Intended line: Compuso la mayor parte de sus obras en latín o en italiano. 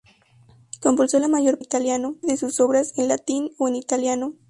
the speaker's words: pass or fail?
fail